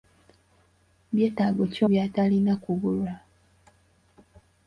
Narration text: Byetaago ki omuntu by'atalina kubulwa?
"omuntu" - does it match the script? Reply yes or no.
no